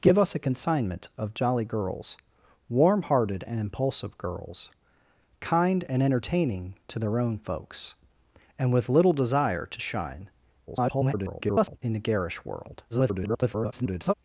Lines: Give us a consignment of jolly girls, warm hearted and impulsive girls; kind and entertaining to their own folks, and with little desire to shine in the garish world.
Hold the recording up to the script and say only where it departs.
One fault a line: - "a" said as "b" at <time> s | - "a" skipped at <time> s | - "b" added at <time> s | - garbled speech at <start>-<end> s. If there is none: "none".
- garbled speech at 10.7-11.8 s
- garbled speech at 12.9-14.1 s